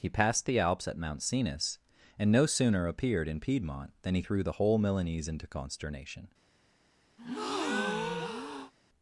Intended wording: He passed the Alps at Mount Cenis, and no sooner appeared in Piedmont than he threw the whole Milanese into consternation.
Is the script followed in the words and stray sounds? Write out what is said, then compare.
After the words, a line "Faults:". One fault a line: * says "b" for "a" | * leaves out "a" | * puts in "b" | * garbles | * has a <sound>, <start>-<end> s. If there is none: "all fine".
He passed the Alps at Mount Cenis, and no sooner appeared in Piedmont than he threw the whole Milanese into consternation.
Faults:
* has a breath, 7.2-8.7 s